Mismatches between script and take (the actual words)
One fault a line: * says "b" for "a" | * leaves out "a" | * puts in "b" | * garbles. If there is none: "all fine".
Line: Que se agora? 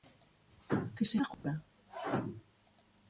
all fine